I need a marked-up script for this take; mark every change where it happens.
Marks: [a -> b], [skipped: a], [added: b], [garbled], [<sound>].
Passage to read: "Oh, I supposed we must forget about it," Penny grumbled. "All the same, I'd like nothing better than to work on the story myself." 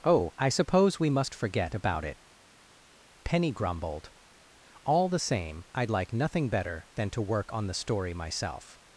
"Oh, I [supposed -> suppose] we must forget about it," Penny grumbled. "All the same, I'd like nothing better than to work on the story myself."